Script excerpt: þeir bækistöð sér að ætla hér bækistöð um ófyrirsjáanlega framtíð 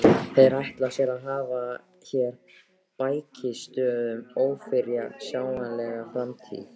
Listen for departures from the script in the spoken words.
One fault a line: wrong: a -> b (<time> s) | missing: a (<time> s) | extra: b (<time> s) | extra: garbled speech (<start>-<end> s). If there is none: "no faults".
wrong: bækistöð -> ætla (0.6 s)
wrong: ætla -> hafa (1.3 s)